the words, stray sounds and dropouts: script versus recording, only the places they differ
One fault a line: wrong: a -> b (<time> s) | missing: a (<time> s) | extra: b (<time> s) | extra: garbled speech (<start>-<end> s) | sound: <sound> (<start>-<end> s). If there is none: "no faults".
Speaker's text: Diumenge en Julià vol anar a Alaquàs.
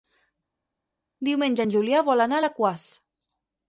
no faults